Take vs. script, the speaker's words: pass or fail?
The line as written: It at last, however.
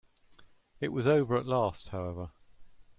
fail